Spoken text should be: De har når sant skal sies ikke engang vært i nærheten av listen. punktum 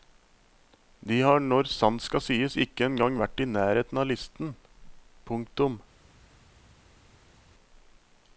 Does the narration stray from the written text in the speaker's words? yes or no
no